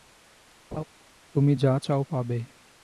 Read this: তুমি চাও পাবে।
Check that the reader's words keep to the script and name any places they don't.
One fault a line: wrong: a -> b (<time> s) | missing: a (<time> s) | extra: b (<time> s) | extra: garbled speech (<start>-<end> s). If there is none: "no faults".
extra: যা (1.5 s)